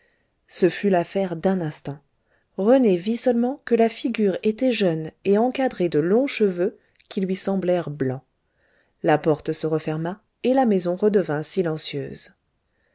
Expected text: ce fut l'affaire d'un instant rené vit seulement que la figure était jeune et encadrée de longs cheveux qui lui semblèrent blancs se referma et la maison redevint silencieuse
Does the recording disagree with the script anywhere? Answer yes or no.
yes